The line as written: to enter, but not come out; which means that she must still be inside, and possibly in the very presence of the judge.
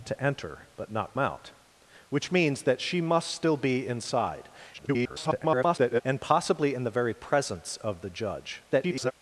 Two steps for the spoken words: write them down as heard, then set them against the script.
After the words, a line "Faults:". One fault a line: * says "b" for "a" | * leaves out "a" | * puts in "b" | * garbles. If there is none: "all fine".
to enter, but not out; which means that she must still be inside, [garbled] and possibly in the very presence of the judge. [garbled]
Faults:
* leaves out "come"
* garbles
* garbles